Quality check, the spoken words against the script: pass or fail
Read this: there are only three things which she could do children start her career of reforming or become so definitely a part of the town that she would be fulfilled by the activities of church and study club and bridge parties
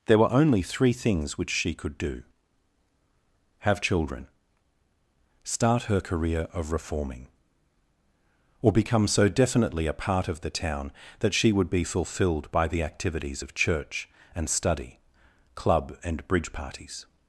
fail